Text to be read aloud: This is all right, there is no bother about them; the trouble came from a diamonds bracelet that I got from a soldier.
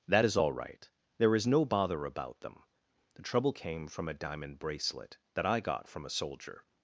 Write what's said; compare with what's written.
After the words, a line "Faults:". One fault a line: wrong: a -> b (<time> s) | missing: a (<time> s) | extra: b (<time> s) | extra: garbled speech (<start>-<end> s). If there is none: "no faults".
That is all right, there is no bother about them; the trouble came from a diamond bracelet that I got from a soldier.
Faults:
wrong: This -> That (0.1 s)
wrong: diamonds -> diamond (4.1 s)